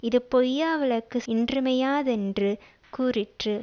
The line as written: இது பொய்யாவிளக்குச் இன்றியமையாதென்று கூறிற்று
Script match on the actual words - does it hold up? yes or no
yes